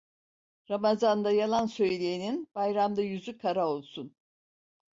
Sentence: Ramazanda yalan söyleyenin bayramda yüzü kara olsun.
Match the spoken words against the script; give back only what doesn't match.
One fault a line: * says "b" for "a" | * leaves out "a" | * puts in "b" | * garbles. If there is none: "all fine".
all fine